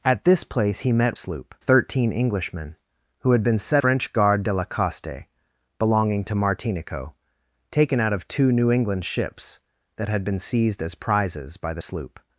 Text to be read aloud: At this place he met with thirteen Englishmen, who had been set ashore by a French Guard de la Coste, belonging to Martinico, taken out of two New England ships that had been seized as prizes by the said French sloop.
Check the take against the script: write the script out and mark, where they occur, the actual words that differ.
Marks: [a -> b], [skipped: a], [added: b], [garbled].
At this place he met [with -> sloop] thirteen Englishmen, who had been set [skipped: ashore by a] French Guard de la Coste, belonging to Martinico, taken out of two New England ships that had been seized as prizes by the [skipped: said French] sloop.